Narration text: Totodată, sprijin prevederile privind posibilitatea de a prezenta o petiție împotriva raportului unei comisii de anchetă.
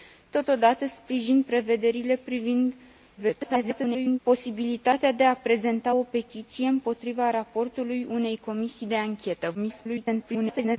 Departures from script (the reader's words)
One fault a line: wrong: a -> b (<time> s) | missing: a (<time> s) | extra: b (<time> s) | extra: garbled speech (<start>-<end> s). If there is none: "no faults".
extra: garbled speech (3.2-4.2 s)
extra: garbled speech (9.5-10.8 s)